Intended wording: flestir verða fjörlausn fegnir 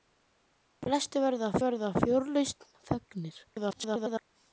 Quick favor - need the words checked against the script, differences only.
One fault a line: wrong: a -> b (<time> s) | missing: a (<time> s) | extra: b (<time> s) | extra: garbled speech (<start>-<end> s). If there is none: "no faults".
extra: verða (1.6 s)
extra: garbled speech (3.5-4.3 s)